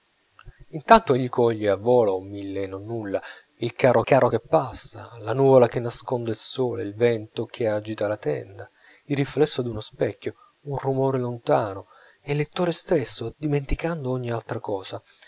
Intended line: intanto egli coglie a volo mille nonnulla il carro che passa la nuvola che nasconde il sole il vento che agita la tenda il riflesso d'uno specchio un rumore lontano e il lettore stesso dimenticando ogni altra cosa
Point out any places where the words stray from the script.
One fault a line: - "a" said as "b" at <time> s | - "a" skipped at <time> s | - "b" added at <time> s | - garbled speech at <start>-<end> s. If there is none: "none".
- "carro" added at 4.0 s